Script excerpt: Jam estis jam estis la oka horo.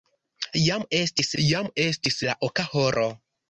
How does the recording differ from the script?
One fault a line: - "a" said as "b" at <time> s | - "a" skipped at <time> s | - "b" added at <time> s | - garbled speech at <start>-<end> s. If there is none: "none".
none